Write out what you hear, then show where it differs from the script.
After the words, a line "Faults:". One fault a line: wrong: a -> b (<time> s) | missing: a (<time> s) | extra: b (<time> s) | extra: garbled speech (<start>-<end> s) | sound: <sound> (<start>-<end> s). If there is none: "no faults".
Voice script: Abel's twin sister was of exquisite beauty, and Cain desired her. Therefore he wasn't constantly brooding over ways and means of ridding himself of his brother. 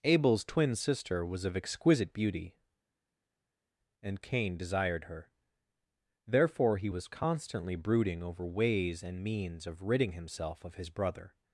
Abel's twin sister was of exquisite beauty, and Cain desired her. Therefore he was constantly brooding over ways and means of ridding himself of his brother.
Faults:
wrong: wasn't -> was (6.9 s)